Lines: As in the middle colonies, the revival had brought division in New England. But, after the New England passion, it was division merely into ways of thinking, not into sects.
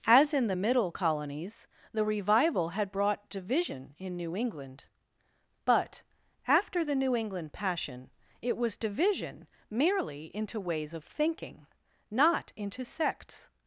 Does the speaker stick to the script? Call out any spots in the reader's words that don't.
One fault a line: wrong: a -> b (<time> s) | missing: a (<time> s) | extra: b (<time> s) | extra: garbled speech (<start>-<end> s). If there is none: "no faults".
no faults